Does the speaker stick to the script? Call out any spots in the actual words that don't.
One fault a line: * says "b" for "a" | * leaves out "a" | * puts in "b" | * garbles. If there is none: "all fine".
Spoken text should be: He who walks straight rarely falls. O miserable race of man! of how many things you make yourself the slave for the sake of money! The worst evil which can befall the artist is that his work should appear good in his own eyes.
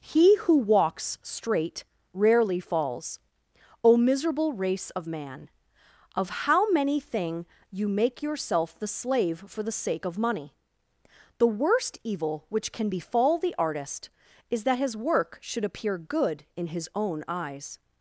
* says "thing" for "things"